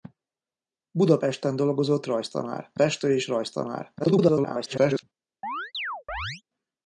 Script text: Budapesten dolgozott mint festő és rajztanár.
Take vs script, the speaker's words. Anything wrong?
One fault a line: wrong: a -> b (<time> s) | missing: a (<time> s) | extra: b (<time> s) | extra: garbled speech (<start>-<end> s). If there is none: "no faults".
wrong: mint -> rajztanár (2.1 s)
extra: garbled speech (4.0-5.0 s)